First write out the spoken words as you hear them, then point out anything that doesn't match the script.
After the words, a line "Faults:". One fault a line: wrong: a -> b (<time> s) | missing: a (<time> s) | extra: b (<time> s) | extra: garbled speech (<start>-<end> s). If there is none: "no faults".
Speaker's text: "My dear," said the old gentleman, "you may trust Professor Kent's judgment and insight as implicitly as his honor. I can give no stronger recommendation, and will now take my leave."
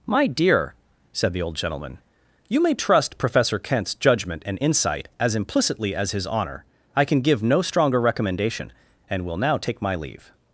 "My dear," said the old gentleman, "you may trust Professor Kent's judgment and insight as implicitly as his honor. I can give no stronger recommendation, and will now take my leave."
Faults:
no faults